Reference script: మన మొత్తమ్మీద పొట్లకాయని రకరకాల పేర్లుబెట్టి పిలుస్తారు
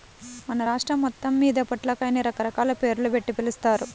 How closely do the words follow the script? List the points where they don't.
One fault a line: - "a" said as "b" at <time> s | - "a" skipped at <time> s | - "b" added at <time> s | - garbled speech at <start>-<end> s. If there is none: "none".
- "రాష్ట్రం" added at 0.6 s